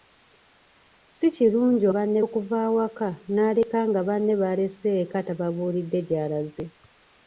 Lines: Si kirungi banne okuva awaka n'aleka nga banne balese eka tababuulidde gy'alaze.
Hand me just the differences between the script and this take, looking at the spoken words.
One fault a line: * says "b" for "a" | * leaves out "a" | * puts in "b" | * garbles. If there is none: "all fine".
all fine